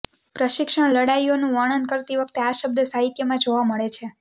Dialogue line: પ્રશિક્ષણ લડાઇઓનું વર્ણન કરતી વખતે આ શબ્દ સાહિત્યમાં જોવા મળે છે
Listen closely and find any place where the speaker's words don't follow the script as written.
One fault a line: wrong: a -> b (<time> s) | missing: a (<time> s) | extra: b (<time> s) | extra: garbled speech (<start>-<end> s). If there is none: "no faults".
no faults